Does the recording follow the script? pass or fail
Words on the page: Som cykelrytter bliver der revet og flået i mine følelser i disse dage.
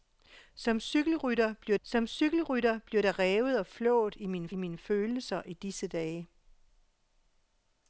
fail